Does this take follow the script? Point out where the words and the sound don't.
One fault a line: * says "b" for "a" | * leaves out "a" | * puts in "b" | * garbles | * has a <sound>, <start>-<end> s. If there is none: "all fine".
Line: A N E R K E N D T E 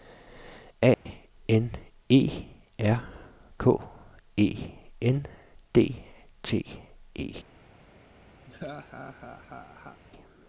* has a dropout, 0.9-1.1 s
* has a laugh, 8.5-10.0 s